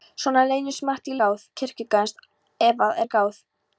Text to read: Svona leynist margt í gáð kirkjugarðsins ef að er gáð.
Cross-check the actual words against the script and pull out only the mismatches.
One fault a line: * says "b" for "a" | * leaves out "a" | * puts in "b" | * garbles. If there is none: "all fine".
all fine